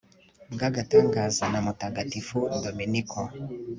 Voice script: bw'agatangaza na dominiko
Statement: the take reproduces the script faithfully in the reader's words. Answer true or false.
false